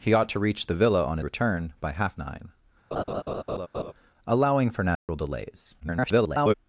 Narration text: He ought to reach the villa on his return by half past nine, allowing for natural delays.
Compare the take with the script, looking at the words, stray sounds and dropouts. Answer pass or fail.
fail